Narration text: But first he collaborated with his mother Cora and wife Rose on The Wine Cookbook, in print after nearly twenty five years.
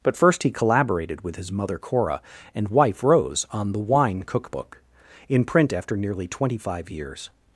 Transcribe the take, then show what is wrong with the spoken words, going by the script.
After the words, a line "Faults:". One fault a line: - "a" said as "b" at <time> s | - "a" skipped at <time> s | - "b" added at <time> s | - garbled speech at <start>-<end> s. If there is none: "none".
But first he collaborated with his mother Cora and wife Rose on The Wine Cookbook, in print after nearly twenty five years.
Faults:
none